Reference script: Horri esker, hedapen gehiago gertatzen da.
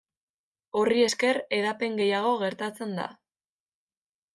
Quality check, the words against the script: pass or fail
pass